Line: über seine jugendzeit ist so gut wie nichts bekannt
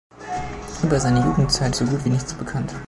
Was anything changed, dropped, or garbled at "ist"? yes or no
yes